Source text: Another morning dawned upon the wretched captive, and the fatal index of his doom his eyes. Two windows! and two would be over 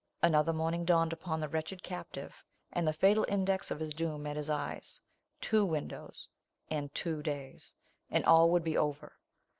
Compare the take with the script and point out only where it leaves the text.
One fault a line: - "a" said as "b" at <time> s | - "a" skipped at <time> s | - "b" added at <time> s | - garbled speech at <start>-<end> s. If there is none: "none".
- "met" added at 4.2 s
- "days and all" added at 7.2 s